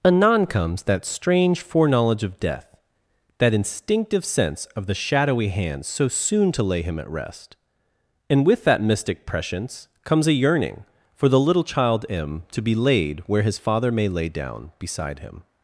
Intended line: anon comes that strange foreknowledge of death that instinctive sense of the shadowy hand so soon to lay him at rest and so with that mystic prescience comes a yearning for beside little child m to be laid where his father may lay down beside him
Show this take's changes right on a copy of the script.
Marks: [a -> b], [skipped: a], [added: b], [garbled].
anon comes that strange foreknowledge of death that instinctive sense of the shadowy hand so soon to lay him at rest and [skipped: so] with that mystic prescience comes a yearning for [beside -> the] little child m to be laid where his father may lay down beside him